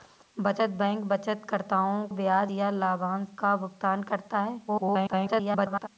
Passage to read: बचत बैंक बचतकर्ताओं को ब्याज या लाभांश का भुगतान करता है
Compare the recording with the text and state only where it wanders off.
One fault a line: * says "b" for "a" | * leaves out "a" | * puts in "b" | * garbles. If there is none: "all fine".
* leaves out "को"
* garbles